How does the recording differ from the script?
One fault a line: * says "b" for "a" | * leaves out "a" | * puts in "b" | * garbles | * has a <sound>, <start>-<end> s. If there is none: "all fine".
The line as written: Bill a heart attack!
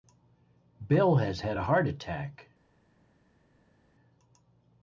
* puts in "has had"